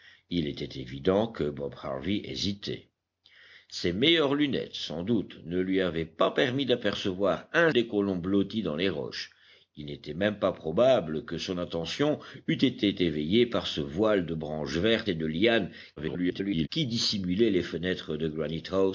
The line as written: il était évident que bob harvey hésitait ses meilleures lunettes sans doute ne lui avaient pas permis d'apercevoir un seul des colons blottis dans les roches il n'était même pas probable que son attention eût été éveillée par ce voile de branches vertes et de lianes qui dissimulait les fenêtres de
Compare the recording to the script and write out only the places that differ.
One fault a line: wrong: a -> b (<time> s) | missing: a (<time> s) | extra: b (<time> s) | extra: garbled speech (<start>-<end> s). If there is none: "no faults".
missing: seul (7.7 s)
extra: garbled speech (16.0-16.7 s)